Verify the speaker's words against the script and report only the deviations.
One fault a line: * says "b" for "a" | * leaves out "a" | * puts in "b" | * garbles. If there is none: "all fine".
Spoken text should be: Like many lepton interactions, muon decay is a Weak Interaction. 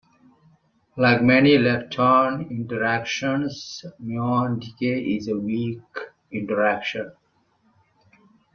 all fine